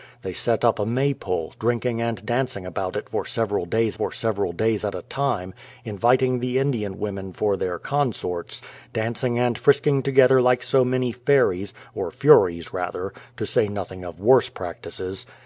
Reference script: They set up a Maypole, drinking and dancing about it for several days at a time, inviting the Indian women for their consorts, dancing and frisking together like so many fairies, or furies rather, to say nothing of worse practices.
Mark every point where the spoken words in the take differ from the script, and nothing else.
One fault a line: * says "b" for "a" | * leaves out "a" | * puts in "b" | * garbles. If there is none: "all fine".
* puts in "for several days"